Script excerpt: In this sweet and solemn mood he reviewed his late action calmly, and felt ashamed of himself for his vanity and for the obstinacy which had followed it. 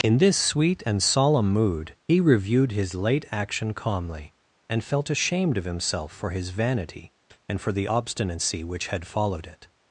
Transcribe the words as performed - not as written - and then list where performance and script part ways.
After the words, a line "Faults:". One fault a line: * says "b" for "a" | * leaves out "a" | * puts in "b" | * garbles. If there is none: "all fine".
In this sweet and solemn mood he reviewed his late action calmly, and felt ashamed of himself for his vanity and for the obstinacy which had followed it.
Faults:
all fine